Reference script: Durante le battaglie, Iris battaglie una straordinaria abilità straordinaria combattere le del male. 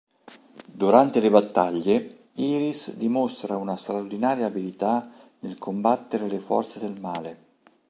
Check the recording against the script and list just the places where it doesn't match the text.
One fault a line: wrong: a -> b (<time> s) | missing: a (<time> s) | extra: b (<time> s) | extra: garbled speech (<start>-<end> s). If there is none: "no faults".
wrong: battaglie -> dimostra (3.0 s)
wrong: straordinaria -> nel (5.4 s)
extra: forze (6.4 s)